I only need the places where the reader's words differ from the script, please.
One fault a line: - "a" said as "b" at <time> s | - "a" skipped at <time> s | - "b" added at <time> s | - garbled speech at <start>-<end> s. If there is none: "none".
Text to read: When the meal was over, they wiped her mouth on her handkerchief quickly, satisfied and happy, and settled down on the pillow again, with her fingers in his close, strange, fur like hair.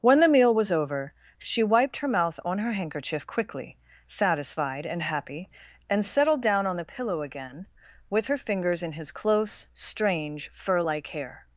- "they" said as "she" at 1.4 s